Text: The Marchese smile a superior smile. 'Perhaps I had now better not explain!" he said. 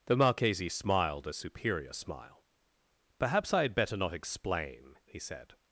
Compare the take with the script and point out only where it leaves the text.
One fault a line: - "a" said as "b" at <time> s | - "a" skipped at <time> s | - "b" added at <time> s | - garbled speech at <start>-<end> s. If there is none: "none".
- "smile" said as "smiled" at 0.7 s
- "now" skipped at 3.8 s